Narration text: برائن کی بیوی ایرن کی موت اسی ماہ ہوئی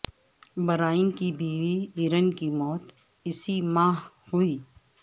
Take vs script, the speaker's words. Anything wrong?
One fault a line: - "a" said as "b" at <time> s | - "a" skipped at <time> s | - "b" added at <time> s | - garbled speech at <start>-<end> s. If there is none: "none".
none